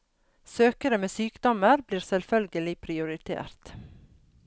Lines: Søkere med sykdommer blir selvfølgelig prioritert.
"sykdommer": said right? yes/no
yes